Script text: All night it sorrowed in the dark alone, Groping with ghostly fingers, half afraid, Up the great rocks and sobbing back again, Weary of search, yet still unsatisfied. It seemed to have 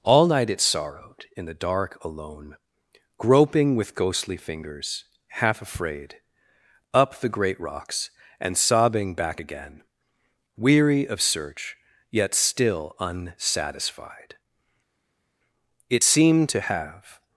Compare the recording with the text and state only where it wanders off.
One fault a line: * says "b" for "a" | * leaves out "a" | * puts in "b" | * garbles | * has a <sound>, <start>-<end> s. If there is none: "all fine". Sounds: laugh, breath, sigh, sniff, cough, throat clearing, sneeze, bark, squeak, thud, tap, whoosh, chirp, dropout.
all fine